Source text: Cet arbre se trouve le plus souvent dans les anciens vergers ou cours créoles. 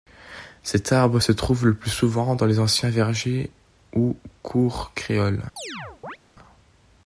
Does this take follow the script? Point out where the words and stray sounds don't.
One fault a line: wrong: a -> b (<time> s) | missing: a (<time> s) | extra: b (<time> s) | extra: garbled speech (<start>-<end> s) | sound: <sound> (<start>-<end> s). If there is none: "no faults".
sound: chirp (5.6-6.2 s)